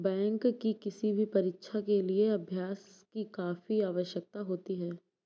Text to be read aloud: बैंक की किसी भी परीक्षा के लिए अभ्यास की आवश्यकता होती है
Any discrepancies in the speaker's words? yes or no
yes